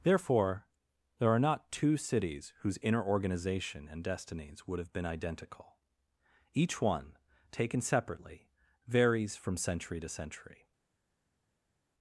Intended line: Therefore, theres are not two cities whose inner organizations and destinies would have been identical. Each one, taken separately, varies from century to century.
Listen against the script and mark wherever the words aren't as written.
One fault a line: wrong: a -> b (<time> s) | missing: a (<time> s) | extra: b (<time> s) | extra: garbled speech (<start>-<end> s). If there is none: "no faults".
wrong: theres -> there (1.2 s)
wrong: organizations -> organization (3.0 s)